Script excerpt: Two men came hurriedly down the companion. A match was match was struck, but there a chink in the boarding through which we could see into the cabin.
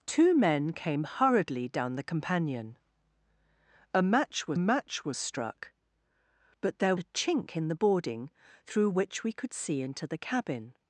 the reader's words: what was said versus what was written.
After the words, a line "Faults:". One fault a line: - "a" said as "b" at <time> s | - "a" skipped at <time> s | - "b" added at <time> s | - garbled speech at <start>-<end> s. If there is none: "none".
Two men came hurriedly down the companion. A match was match was struck, but there a chink in the boarding through which we could see into the cabin.
Faults:
none